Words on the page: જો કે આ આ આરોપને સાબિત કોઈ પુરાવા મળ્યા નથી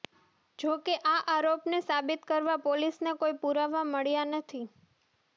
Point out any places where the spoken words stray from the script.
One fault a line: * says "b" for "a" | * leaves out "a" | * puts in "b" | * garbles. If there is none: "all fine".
* leaves out "આ"
* puts in "કરવા પોલીસને"